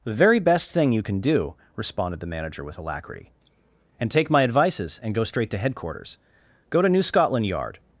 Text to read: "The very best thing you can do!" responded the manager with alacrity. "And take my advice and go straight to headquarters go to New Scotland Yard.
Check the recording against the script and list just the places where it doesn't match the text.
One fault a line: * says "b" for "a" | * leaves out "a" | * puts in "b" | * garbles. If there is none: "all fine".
* says "advices" for "advice"